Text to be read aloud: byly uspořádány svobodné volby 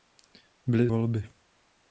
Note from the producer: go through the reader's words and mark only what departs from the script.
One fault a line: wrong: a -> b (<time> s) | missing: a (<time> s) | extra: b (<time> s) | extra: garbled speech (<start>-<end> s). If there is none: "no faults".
missing: uspořádány svobodné (0.9 s)